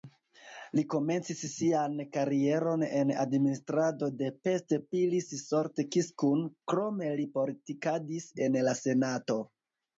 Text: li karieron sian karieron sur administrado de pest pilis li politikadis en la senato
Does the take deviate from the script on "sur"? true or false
true